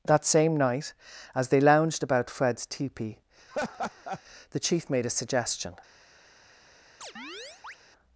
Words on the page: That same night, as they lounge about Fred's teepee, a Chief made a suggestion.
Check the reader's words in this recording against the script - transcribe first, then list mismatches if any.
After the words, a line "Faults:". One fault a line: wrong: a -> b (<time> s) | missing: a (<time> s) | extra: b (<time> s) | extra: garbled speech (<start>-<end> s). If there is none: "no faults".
That same night, as they lounged about Fred's teepee, the Chief made a suggestion.
Faults:
wrong: lounge -> lounged (1.6 s)
wrong: a -> the (4.5 s)